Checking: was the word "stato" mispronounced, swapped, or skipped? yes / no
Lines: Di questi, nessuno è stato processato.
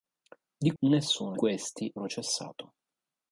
yes